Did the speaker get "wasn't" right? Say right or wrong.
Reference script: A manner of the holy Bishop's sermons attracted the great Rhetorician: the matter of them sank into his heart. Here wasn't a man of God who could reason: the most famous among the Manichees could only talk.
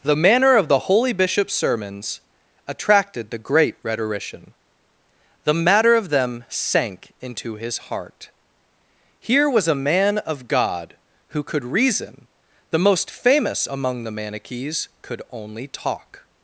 wrong